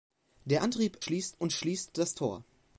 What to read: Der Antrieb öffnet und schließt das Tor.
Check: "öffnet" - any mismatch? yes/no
yes